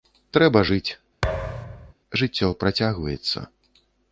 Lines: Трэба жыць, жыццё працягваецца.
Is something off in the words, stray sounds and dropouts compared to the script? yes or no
yes